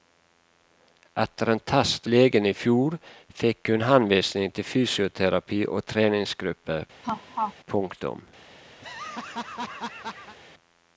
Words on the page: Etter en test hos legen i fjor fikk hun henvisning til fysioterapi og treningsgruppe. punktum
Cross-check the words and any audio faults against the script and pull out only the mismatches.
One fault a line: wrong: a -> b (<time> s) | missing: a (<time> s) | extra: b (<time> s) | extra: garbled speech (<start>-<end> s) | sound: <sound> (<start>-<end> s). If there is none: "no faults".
missing: hos (2.1 s)
sound: laugh (7.0-7.5 s)
sound: laugh (8.8-10.4 s)